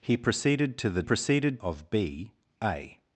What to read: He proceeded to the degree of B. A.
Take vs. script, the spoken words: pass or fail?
fail